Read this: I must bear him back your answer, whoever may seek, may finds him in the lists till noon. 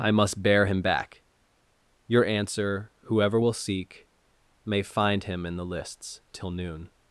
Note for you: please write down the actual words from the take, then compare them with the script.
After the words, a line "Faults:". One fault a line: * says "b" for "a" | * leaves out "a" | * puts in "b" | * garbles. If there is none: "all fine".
I must bear him back your answer, whoever will seek, may find him in the lists till noon.
Faults:
* says "will" for "may"
* says "find" for "finds"